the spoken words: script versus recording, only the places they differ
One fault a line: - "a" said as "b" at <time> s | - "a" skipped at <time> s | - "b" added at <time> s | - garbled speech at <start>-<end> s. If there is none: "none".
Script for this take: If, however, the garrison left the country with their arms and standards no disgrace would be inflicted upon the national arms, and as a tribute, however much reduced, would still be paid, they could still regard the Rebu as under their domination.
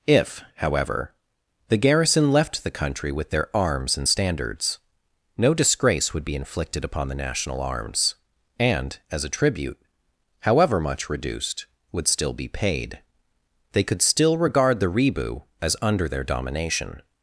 none